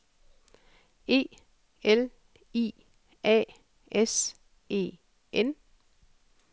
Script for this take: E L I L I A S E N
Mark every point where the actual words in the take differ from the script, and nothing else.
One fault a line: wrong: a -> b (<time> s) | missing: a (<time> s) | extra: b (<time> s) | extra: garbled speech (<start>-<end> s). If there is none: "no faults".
missing: L I (2.7 s)